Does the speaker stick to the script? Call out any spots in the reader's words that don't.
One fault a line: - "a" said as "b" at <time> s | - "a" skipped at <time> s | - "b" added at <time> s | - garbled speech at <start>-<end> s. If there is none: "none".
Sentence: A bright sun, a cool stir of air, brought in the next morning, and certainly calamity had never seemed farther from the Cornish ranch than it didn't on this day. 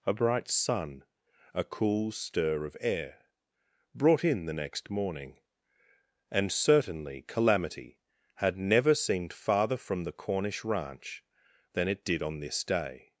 - "didn't" said as "did" at 12.1 s